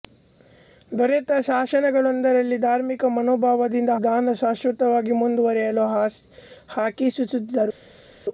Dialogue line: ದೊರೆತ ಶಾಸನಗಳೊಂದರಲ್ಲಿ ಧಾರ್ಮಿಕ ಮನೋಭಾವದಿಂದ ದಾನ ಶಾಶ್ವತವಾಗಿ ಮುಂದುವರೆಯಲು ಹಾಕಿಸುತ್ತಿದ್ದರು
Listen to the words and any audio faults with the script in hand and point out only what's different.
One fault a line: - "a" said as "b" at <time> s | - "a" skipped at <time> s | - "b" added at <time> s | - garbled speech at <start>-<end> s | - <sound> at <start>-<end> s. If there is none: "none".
none